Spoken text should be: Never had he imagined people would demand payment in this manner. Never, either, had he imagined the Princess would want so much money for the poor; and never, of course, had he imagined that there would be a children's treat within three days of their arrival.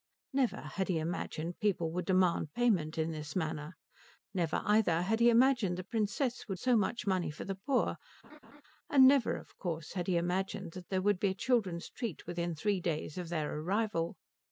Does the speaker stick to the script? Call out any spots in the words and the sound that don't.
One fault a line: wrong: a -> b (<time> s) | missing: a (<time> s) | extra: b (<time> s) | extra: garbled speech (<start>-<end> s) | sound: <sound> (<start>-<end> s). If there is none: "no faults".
missing: want (6.6 s)
sound: laugh (8.2-8.6 s)